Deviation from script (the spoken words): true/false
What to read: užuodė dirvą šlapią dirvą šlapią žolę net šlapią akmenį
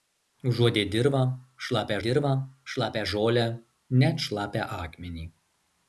false